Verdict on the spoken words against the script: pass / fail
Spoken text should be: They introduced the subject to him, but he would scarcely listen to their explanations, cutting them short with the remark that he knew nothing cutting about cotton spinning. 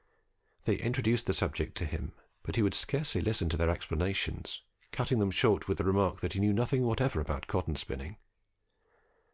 fail